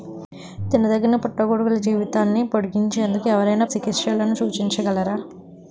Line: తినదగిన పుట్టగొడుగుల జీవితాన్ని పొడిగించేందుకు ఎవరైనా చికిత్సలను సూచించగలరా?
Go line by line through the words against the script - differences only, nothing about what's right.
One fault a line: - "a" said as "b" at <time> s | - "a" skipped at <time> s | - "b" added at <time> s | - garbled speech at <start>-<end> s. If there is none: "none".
none